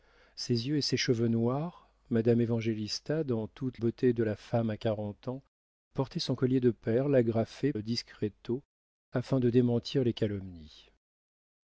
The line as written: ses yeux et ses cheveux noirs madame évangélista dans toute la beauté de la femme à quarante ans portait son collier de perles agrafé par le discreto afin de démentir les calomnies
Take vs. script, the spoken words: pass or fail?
fail